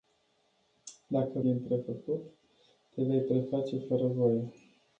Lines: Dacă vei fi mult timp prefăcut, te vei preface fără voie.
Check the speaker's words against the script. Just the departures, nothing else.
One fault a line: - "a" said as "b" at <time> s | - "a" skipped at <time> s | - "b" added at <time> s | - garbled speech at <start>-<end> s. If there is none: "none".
- "vei fi mult" skipped at 1.4 s